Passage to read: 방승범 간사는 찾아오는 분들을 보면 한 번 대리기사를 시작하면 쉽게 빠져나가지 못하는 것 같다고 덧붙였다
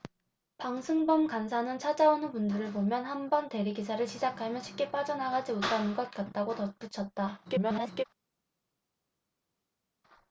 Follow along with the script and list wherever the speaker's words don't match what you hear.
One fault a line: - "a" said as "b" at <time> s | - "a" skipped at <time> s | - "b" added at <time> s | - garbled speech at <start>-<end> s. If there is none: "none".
- garbled speech at 7.4-8.0 s